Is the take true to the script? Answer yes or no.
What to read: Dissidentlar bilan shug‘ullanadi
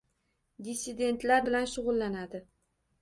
yes